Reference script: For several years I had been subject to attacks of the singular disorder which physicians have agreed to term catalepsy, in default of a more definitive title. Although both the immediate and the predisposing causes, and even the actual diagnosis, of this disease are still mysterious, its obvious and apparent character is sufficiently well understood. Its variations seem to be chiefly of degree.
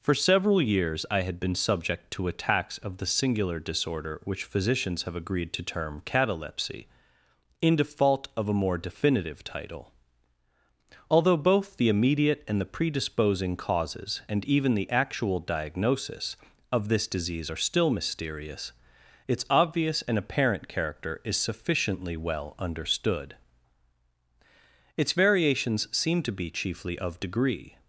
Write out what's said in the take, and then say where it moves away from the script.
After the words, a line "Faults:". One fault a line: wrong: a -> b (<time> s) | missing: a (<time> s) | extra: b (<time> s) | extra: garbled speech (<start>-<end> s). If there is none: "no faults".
For several years I had been subject to attacks of the singular disorder which physicians have agreed to term catalepsy, in default of a more definitive title. Although both the immediate and the predisposing causes, and even the actual diagnosis, of this disease are still mysterious, its obvious and apparent character is sufficiently well understood. Its variations seem to be chiefly of degree.
Faults:
no faults